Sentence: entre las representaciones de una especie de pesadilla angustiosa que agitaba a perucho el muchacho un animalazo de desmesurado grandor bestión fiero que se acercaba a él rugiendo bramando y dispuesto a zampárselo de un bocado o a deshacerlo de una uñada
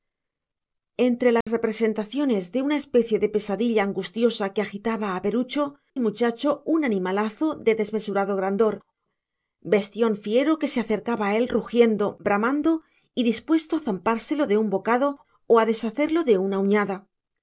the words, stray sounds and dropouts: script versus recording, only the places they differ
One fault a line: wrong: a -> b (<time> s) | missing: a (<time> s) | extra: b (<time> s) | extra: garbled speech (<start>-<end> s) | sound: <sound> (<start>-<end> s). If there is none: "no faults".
sound: dropout (1.4-1.5 s)